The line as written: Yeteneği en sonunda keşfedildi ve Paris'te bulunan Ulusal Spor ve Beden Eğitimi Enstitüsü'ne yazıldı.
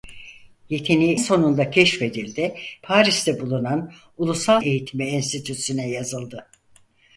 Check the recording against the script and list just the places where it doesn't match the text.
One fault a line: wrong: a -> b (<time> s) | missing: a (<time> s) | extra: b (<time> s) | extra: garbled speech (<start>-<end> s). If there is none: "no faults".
missing: en (1.1 s)
missing: ve (2.5 s)
missing: Spor ve Beden (4.6 s)